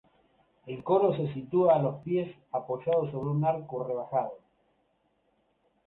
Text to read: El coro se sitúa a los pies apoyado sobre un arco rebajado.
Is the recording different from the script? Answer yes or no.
no